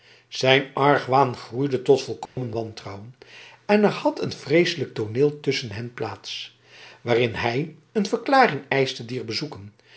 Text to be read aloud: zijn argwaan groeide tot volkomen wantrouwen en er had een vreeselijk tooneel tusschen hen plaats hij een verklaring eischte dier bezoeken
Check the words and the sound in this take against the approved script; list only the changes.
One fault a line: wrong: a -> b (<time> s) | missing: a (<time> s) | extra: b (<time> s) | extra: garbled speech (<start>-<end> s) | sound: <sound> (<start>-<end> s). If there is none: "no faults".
sound: dropout (2.3-2.4 s)
extra: waarin (7.0 s)